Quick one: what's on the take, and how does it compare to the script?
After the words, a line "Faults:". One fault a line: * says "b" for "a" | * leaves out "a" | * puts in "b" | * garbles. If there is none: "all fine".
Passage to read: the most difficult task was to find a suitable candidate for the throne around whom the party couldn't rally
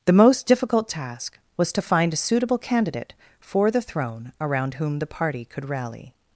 the most difficult task was to find a suitable candidate for the throne around whom the party could rally
Faults:
* says "could" for "couldn't"